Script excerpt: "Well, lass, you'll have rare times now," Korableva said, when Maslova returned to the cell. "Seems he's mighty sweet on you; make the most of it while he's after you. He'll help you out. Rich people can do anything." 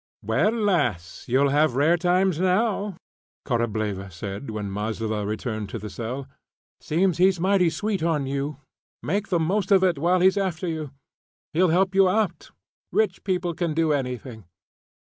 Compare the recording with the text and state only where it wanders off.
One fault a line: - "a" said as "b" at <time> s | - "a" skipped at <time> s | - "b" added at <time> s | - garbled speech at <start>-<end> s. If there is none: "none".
none